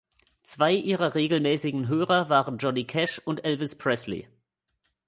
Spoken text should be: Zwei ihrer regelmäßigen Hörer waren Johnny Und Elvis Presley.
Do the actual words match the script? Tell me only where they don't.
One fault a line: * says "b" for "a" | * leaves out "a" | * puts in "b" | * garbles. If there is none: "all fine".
* puts in "Cash"